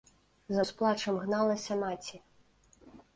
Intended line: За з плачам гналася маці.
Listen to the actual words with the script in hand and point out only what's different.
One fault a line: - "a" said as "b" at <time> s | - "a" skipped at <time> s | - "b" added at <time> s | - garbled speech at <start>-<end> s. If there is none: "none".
none